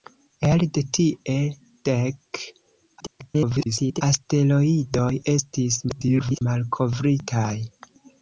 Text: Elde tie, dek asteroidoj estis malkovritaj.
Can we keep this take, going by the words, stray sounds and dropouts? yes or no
no